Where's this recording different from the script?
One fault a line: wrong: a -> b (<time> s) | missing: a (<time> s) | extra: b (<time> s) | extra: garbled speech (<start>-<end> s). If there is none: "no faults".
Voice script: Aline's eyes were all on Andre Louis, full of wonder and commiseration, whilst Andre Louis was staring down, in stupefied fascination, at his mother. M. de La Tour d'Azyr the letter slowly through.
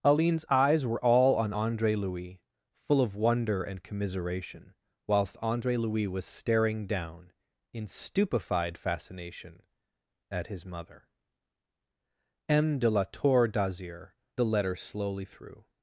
no faults